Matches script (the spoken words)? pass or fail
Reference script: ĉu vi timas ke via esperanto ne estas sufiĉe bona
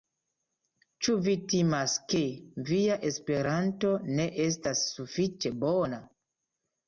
pass